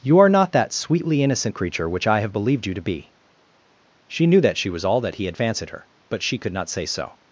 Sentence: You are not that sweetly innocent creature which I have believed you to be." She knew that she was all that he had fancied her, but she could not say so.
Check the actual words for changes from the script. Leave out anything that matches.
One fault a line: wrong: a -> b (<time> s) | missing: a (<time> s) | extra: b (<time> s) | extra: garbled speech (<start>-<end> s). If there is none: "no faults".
no faults